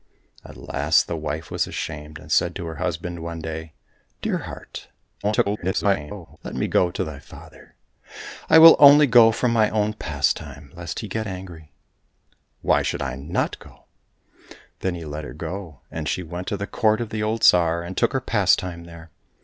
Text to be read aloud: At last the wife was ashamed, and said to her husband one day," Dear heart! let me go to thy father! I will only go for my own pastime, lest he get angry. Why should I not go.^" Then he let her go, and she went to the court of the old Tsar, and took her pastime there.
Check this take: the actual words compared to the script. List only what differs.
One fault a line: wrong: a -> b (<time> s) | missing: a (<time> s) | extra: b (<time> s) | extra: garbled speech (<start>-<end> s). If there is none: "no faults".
extra: garbled speech (5.2-6.4 s)